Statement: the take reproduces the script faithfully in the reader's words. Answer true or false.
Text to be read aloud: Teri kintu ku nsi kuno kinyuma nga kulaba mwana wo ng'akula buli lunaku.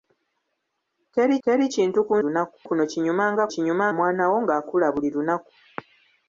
false